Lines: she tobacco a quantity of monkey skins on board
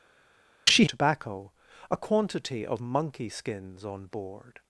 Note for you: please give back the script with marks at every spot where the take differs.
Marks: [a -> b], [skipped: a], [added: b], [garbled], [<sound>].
she tobacco a quantity of monkey skins on board